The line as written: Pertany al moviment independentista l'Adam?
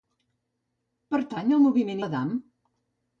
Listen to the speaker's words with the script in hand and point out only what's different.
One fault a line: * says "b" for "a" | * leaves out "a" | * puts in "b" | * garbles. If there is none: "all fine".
* leaves out "independentista"